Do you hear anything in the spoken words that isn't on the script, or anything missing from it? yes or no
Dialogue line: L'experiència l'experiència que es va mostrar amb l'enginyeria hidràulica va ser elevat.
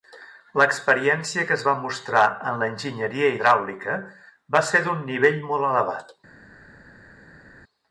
yes